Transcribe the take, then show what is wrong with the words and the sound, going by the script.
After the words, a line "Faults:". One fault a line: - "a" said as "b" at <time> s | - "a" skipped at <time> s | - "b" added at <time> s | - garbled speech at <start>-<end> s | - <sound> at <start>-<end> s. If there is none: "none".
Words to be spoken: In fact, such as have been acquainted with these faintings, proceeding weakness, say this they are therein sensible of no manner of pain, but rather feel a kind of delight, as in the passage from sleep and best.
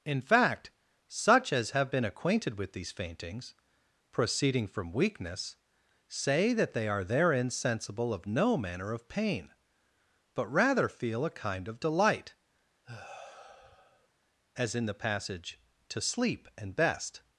In fact, such as have been acquainted with these faintings, proceeding from weakness, say that they are therein sensible of no manner of pain, but rather feel a kind of delight, as in the passage to sleep and best.
Faults:
- "from" added at 4.7 s
- "this" said as "that" at 6.5 s
- sigh at 12.8-14.1 s
- "from" said as "to" at 15.9 s